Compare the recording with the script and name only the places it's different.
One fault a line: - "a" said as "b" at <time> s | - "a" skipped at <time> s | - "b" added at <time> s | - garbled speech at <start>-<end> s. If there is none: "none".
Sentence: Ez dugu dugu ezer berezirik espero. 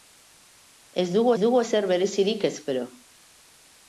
none